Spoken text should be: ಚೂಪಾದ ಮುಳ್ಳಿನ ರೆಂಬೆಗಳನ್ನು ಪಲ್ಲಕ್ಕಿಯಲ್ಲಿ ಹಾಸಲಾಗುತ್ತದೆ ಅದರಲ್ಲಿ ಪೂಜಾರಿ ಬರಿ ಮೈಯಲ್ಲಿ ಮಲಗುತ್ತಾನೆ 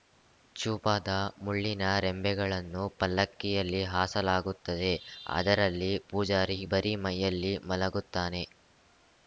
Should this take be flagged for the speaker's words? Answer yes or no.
no